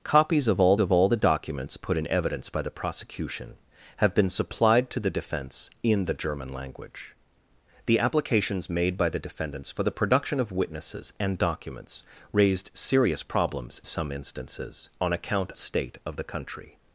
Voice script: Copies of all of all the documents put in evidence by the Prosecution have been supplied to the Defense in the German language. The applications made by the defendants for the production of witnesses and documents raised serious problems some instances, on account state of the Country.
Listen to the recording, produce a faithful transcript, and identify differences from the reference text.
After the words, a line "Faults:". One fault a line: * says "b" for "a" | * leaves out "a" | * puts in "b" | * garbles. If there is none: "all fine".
Copies of all of all the documents put in evidence by the Prosecution have been supplied to the Defense in the German language. The applications made by the defendants for the production of witnesses and documents raised serious problems some instances, on account state of the Country.
Faults:
all fine